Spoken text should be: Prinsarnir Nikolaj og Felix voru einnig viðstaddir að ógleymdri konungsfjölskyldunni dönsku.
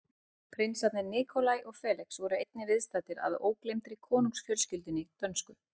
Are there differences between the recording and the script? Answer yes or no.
no